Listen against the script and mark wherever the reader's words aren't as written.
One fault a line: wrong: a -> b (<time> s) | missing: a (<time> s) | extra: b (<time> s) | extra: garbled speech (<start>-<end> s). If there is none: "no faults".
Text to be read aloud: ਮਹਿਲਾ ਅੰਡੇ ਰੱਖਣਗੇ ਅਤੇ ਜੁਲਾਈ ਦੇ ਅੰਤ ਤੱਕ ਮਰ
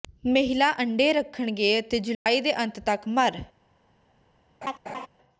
no faults